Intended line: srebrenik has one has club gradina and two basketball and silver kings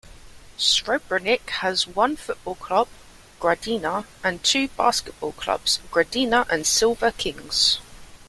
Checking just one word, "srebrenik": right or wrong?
right